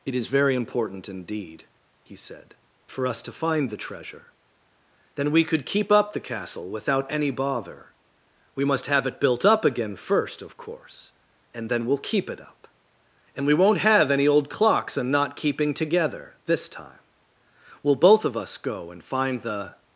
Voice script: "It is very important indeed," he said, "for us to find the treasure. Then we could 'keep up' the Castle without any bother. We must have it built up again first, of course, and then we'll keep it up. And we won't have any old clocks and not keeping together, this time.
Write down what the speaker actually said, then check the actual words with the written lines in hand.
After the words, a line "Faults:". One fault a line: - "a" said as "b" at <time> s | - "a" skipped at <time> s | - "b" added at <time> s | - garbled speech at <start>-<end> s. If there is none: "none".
"It is very important indeed," he said, "for us to find the treasure. Then we could 'keep up' the Castle without any bother. We must have it built up again first, of course, and then we'll keep it up. And we won't have any old clocks and not keeping together, this time. We'll both of us go and find the
Faults:
- "We'll both of us go and find the" added at 17.8 s